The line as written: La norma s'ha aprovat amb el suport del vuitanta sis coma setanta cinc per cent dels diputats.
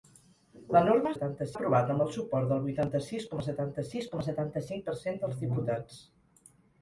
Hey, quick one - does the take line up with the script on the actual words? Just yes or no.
no